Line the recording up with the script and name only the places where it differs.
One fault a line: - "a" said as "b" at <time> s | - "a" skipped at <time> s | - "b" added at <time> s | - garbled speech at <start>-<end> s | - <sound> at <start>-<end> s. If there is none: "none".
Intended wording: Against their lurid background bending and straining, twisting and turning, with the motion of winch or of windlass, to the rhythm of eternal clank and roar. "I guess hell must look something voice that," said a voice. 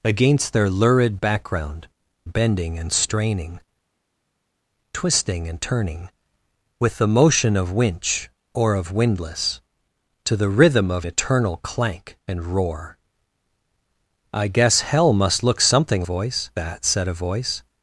none